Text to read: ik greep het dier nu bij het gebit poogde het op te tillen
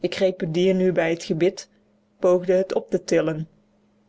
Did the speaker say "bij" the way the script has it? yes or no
yes